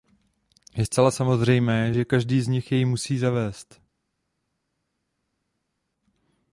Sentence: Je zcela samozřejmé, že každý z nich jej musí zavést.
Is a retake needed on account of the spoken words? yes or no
no